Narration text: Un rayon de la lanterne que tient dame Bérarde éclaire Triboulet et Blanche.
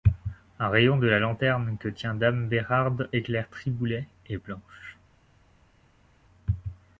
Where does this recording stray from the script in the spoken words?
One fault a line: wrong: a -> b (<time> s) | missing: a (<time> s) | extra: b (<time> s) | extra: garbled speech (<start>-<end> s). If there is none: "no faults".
no faults